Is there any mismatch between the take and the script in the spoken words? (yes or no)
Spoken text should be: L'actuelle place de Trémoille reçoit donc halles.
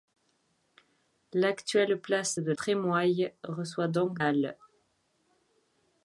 no